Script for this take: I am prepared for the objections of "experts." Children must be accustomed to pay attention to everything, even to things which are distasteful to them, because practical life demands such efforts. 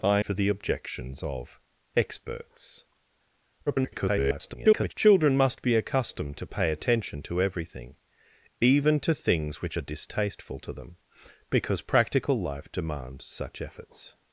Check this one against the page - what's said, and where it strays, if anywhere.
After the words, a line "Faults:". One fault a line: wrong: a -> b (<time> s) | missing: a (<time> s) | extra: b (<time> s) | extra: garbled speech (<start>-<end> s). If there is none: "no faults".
I for the objections of "experts." [garbled] Children must be accustomed to pay attention to everything, even to things which are distasteful to them, because practical life demands such efforts.
Faults:
missing: am prepared (0.2 s)
extra: garbled speech (3.7-4.9 s)